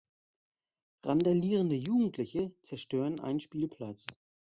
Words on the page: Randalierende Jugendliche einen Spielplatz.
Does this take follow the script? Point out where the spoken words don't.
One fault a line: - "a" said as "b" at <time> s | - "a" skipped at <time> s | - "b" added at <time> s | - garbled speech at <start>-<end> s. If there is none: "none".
- "zerstören" added at 2.6 s